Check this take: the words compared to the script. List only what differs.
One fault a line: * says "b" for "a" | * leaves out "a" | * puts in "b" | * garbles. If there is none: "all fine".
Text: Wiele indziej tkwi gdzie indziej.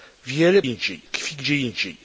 all fine